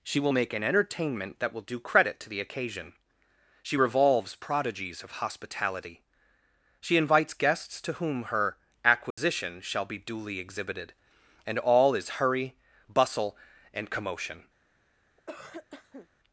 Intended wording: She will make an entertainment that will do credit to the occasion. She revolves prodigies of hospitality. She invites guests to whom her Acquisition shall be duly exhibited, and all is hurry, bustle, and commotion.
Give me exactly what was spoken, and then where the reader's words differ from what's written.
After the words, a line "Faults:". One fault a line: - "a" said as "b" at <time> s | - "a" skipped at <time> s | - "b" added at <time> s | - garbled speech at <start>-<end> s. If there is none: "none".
She will make an entertainment that will do credit to the occasion. She revolves prodigies of hospitality. She invites guests to whom her Acquisition shall be duly exhibited, and all is hurry, bustle, and commotion.
Faults:
none